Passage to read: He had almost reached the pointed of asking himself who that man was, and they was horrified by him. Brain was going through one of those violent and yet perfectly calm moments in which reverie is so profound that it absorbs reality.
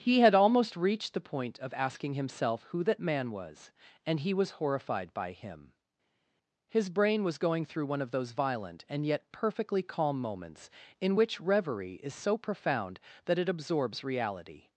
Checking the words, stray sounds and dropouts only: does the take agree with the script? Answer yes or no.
no